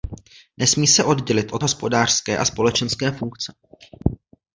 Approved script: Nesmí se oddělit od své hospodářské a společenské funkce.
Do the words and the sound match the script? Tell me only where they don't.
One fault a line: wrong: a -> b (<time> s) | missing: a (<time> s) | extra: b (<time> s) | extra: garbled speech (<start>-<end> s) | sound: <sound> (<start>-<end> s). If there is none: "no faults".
missing: své (1.6 s)